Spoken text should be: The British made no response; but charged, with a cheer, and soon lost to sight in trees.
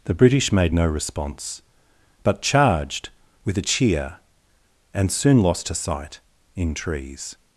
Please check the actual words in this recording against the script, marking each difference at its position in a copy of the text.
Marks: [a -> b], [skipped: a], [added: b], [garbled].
The British made no response; but charged, with a cheer, and soon lost to sight in trees.